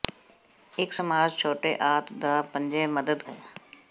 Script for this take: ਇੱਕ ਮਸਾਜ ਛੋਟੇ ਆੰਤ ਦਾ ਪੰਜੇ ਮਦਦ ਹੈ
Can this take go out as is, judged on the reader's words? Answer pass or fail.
pass